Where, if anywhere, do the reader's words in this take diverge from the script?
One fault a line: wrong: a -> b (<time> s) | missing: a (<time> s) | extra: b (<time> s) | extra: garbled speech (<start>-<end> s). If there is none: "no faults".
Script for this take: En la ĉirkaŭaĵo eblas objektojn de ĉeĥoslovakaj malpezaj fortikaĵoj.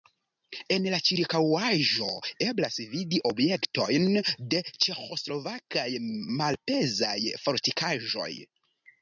extra: vidi (2.9 s)